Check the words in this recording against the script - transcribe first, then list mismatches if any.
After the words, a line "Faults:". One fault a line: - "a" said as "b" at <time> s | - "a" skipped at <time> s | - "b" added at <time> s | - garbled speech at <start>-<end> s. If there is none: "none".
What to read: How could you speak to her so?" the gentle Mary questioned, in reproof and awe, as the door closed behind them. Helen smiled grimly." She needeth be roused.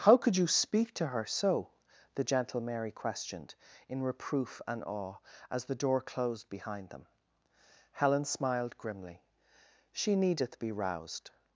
How could you speak to her so?" the gentle Mary questioned, in reproof and awe, as the door closed behind them. Helen smiled grimly." She needeth be roused.
Faults:
none